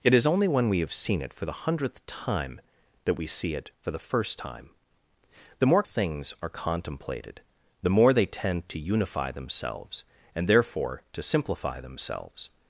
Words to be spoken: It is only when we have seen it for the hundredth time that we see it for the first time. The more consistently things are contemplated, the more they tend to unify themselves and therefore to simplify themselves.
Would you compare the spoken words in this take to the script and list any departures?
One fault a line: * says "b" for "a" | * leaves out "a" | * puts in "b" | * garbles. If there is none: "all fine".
* leaves out "consistently"